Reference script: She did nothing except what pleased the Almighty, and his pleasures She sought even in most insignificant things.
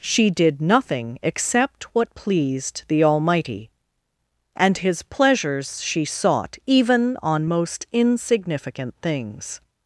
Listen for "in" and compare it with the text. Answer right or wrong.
wrong